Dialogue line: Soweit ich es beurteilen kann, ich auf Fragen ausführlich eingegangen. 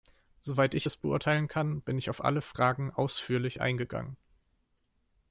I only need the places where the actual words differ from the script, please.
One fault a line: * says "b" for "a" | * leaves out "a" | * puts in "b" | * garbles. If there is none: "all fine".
* puts in "bin"
* puts in "alle"